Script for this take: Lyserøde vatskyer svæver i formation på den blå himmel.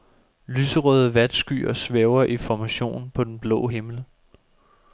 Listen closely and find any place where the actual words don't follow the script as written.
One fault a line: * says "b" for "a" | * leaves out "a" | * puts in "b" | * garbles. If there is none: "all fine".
all fine